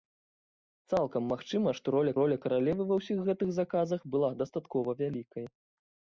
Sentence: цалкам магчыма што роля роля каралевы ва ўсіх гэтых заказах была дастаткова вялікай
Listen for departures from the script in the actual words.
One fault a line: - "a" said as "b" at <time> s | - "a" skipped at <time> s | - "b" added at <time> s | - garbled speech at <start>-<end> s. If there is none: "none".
none